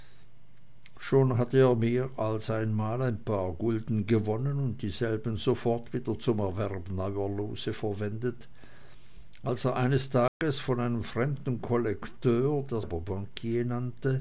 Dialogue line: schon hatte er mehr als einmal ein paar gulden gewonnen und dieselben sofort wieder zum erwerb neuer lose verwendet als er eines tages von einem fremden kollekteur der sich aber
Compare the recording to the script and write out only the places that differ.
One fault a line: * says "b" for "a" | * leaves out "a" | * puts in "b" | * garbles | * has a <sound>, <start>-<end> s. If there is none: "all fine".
* has a dropout, 10.3-10.4 s
* leaves out "sich"